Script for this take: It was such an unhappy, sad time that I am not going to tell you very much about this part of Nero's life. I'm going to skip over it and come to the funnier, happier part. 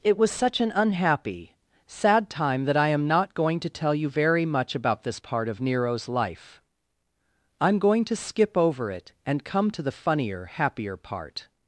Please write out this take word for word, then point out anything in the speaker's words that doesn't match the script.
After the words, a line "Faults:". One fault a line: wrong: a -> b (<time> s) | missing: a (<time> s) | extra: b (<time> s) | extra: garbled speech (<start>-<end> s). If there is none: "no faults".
It was such an unhappy, sad time that I am not going to tell you very much about this part of Nero's life. I'm going to skip over it and come to the funnier, happier part.
Faults:
no faults